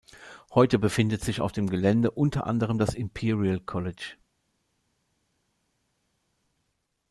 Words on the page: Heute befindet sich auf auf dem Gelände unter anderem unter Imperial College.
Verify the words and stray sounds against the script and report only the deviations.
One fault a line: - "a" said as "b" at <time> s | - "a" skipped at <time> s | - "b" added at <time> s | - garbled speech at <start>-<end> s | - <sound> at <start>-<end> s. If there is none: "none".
- "auf" skipped at 1.5 s
- "unter" said as "das" at 2.8 s